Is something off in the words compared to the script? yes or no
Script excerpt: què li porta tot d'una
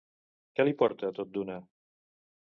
no